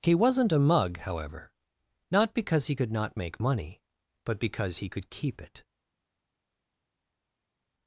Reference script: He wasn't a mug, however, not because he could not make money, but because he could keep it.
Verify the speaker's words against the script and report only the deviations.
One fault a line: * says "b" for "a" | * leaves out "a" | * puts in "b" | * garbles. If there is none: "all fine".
all fine